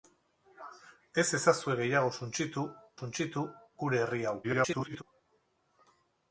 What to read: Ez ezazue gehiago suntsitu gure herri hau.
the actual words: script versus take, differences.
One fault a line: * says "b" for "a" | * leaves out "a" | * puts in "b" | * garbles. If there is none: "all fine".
* puts in "suntsitu"
* garbles